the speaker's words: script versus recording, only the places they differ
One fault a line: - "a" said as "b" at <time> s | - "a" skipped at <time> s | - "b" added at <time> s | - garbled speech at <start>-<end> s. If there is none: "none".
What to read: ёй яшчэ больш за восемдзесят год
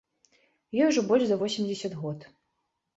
- "яшчэ" said as "ужо" at 0.9 s